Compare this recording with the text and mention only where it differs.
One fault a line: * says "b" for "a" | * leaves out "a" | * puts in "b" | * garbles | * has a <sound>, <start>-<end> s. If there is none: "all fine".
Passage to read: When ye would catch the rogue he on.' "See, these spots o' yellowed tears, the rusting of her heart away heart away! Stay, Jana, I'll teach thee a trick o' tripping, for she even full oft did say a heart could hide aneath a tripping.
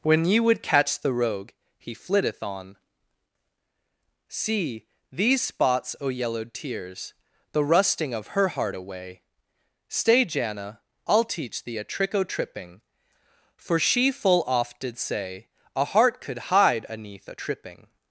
* puts in "flitteth"
* leaves out "heart away"
* leaves out "even"